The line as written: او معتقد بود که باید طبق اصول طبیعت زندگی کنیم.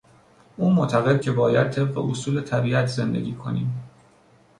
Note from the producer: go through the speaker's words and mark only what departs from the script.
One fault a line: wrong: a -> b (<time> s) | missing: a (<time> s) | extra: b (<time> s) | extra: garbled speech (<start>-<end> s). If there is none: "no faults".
missing: بود (1.2 s)